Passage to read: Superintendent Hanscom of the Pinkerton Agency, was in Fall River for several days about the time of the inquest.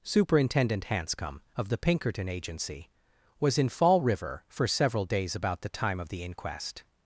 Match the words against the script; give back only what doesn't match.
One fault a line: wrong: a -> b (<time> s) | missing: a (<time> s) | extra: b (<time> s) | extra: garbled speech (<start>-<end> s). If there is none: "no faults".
no faults